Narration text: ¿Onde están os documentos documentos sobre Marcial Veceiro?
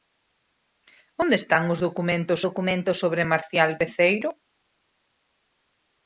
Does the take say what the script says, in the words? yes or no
yes